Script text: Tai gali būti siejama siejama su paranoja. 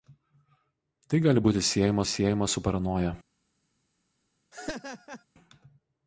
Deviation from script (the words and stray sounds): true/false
true